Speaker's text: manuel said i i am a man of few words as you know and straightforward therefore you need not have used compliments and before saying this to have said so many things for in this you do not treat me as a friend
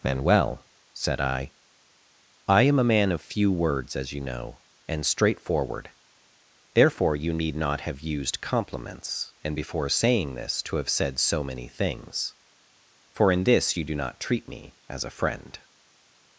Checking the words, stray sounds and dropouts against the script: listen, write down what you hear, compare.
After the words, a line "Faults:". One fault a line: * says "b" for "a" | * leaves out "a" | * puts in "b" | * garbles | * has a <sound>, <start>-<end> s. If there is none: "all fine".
manuel said i i am a man of few words as you know and straightforward therefore you need not have used compliments and before saying this to have said so many things for in this you do not treat me as a friend
Faults:
all fine